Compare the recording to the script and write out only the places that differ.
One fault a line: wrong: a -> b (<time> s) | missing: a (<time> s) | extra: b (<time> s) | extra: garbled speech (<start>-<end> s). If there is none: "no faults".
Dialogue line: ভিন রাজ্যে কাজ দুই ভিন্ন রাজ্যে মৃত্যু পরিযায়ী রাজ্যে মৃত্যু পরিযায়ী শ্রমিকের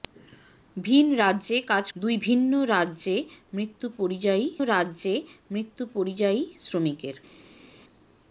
no faults